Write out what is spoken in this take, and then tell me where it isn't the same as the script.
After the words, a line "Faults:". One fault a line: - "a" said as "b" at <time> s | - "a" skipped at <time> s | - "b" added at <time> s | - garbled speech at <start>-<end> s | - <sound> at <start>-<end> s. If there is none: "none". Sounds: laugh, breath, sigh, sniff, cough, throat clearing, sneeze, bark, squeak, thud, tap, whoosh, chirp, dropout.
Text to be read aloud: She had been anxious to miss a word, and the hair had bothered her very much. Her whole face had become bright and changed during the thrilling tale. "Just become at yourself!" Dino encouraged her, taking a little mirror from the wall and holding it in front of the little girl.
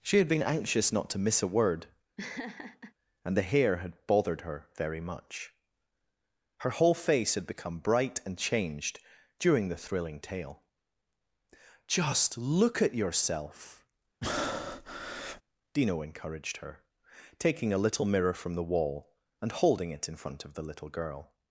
She had been anxious not to miss a word, and the hair had bothered her very much. Her whole face had become bright and changed during the thrilling tale. "Just look at yourself!" Dino encouraged her, taking a little mirror from the wall and holding it in front of the little girl.
Faults:
- "not" added at 0.9 s
- laugh at 2.2-2.9 s
- "become" said as "look" at 12.4 s
- breath at 14.2-15.4 s